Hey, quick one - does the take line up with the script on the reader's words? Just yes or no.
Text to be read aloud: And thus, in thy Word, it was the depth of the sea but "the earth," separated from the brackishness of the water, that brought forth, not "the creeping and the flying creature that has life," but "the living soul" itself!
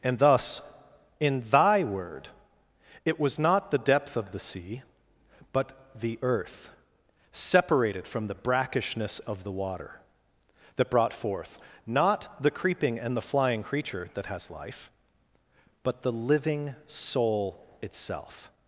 no